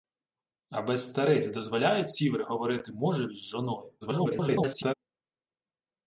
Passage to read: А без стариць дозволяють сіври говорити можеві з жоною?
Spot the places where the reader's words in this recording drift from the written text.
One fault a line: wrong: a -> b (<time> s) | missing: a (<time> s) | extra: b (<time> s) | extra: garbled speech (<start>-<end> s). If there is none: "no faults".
extra: garbled speech (4.0-4.9 s)